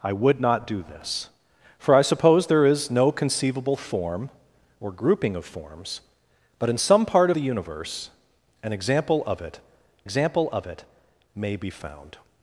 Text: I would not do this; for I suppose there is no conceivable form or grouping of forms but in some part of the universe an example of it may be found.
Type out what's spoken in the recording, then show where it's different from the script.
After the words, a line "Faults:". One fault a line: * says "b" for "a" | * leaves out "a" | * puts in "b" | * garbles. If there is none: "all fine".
I would not do this; for I suppose there is no conceivable form or grouping of forms but in some part the universe an example of it example of it may be found.
Faults:
* leaves out "of"
* puts in "example of it"